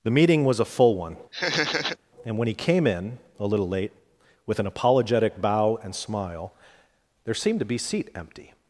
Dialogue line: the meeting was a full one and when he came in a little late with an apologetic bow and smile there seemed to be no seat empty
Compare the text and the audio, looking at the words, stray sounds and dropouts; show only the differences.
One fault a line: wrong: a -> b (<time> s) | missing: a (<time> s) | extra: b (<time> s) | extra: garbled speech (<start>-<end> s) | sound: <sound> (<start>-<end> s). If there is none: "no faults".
sound: laugh (1.3-2.0 s)
missing: no (7.8 s)